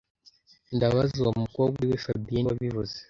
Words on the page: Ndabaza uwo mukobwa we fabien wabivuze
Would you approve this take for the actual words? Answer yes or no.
yes